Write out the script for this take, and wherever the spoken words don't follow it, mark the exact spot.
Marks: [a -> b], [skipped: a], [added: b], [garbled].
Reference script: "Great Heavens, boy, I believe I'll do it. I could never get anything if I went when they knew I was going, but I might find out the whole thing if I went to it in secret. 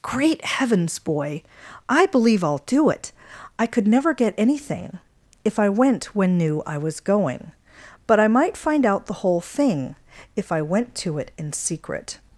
"Great Heavens, boy, I believe I'll do it. I could never get anything if I went when [skipped: they] knew I was going, but I might find out the whole thing if I went to it in secret.